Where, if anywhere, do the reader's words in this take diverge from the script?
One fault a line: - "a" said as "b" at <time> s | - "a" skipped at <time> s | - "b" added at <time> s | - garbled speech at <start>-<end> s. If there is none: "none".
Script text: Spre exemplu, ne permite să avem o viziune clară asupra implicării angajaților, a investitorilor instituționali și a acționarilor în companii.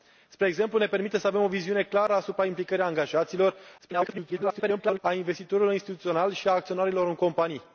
- garbled speech at 3.8-5.0 s